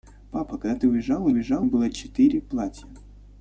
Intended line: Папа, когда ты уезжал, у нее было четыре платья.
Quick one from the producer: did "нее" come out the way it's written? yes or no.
no